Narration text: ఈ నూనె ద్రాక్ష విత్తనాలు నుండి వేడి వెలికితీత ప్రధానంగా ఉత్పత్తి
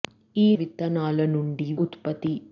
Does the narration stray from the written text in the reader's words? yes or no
yes